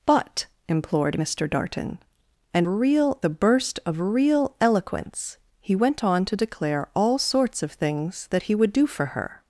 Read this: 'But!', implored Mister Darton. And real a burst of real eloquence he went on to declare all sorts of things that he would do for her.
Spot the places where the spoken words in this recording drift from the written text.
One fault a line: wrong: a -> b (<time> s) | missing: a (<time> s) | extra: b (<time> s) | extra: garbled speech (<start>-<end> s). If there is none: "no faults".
no faults